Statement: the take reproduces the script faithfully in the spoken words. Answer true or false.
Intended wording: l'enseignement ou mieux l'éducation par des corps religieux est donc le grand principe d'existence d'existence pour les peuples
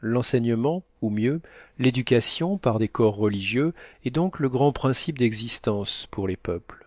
false